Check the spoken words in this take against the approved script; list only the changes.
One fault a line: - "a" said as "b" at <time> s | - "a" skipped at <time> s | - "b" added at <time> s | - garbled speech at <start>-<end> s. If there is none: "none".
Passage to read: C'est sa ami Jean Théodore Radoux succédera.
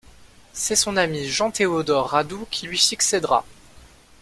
- "sa" said as "son" at 0.8 s
- "qui lui" added at 2.5 s